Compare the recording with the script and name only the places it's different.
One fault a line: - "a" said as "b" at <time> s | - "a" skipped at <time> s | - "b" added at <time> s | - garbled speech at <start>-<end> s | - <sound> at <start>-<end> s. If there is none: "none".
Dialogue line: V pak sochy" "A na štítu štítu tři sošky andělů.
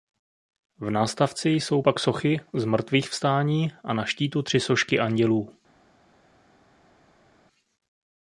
- "nástavci jsou" added at 0.9 s
- "Zmrtvýchvstání" added at 2.5 s
- "štítu" skipped at 4.4 s